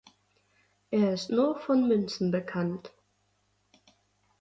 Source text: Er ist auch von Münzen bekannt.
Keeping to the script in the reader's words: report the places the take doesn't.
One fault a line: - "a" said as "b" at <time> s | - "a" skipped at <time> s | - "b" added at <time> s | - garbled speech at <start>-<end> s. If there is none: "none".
- "auch" said as "nur" at 1.3 s